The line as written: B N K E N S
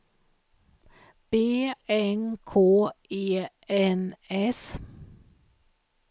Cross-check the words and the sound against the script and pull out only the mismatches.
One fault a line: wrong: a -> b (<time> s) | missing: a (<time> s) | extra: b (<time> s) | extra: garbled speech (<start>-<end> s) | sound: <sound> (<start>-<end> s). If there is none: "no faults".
no faults